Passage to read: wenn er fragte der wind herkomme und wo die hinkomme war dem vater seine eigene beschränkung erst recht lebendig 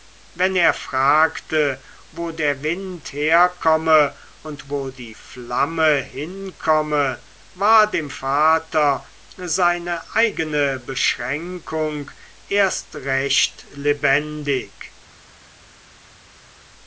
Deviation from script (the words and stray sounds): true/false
true